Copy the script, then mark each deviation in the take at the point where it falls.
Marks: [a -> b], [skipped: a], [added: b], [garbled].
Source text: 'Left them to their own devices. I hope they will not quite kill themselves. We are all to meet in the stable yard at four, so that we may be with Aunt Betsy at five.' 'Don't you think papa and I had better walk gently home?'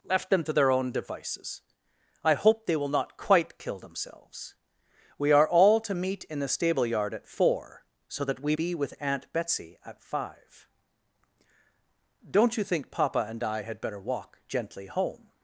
'Left them to their own devices. I hope they will not quite kill themselves. We are all to meet in the stable yard at four, so that we [skipped: may] be with Aunt Betsy at five.' 'Don't you think papa and I had better walk gently home?'